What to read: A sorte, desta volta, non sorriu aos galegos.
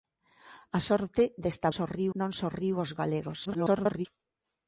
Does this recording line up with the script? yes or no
no